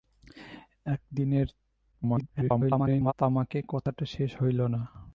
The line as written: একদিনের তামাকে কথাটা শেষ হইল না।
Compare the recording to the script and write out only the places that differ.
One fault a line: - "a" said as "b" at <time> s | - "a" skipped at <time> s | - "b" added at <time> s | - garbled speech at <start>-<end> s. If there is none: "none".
- garbled speech at 1.9-3.1 s